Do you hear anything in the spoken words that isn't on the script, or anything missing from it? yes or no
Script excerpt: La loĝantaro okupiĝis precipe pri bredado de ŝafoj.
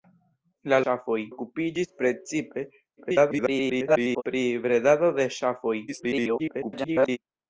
yes